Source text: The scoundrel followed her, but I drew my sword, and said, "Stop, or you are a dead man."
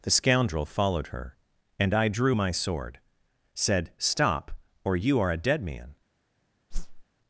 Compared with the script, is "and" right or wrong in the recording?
wrong